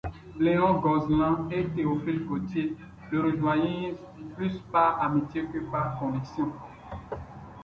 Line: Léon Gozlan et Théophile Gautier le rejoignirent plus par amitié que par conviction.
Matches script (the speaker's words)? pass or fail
pass